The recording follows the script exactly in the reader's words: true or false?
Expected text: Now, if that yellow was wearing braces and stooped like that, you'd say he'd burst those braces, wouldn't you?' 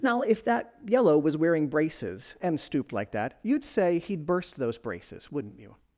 true